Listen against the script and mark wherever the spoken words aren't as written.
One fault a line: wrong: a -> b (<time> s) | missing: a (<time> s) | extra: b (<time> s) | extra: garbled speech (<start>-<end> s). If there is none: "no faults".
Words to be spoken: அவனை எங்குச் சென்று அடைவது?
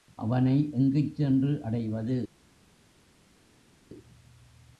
no faults